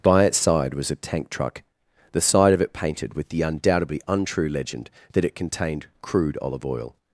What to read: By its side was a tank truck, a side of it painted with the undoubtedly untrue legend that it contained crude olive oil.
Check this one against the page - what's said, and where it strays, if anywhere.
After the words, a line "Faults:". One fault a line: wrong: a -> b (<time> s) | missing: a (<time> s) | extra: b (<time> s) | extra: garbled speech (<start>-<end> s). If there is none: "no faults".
By its side was a tank truck, the side of it painted with the undoubtedly untrue legend that it contained crude olive oil.
Faults:
wrong: a -> the (2.1 s)